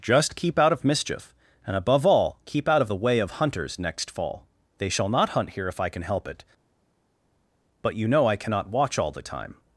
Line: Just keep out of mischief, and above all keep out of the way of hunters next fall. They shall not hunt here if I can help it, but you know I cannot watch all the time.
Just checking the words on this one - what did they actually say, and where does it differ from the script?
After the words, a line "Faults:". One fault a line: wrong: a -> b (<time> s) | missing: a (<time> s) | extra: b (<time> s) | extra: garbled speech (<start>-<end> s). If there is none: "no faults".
Just keep out of mischief, and above all keep out of the way of hunters next fall. They shall not hunt here if I can help it, but you know I cannot watch all the time.
Faults:
no faults